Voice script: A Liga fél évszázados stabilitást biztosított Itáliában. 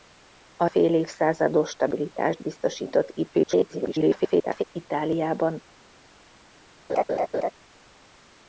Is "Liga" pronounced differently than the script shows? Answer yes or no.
yes